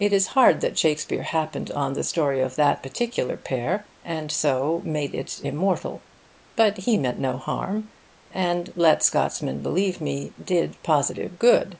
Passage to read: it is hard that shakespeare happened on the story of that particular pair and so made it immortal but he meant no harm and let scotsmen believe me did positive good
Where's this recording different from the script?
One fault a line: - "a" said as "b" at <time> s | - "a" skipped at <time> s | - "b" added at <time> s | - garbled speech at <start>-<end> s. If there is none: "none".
none